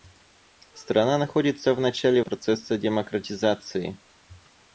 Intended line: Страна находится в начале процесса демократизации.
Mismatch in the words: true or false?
false